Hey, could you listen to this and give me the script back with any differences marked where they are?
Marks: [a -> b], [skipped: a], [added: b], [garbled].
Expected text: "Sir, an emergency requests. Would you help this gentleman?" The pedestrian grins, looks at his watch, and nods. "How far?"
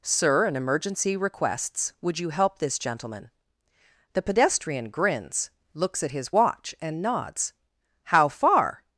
"Sir, an emergency requests. Would you help this gentleman?" The pedestrian grins, looks at his watch, and nods. "How far?"